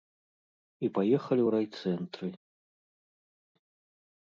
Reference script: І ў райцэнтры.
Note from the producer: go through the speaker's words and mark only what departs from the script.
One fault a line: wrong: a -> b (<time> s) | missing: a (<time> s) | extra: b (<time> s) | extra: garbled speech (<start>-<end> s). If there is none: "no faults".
extra: паехалі (0.9 s)